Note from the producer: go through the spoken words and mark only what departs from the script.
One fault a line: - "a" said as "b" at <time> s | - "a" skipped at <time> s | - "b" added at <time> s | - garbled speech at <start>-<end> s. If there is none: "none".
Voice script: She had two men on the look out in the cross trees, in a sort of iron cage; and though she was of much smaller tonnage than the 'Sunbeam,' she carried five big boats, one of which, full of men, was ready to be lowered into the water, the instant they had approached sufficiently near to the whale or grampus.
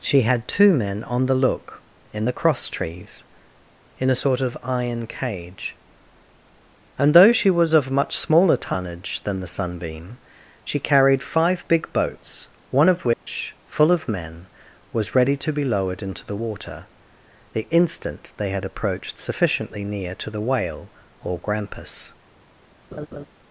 - "out" skipped at 1.8 s